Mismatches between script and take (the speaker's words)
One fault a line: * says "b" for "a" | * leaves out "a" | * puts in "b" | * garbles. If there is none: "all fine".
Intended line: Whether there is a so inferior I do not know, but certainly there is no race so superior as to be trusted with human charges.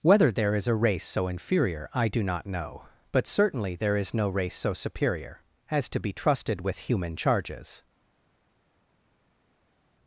* puts in "race"